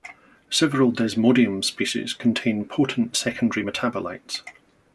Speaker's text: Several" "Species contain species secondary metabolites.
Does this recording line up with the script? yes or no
no